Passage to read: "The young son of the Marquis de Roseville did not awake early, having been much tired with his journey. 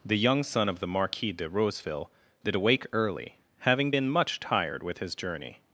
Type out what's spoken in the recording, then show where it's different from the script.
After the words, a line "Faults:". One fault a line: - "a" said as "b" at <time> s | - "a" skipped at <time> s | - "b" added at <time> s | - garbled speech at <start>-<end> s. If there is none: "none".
"The young son of the Marquis de Roseville did awake early, having been much tired with his journey.
Faults:
- "not" skipped at 2.5 s